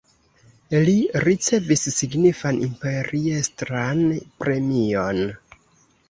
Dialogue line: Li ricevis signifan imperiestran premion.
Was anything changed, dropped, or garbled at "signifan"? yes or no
no